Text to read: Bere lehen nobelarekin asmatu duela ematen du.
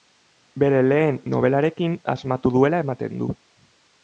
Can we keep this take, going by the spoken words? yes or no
yes